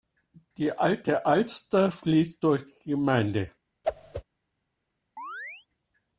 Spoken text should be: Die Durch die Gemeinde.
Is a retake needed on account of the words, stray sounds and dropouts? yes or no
yes